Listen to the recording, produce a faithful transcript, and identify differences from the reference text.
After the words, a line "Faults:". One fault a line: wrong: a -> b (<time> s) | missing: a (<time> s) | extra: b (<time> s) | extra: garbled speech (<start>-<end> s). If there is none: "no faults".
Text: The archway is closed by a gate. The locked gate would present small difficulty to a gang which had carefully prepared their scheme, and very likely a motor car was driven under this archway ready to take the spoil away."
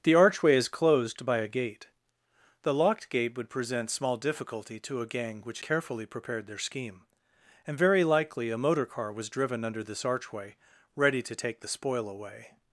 The archway is closed by a gate. The locked gate would present small difficulty to a gang which carefully prepared their scheme, and very likely a motor car was driven under this archway ready to take the spoil away."
Faults:
missing: had (5.6 s)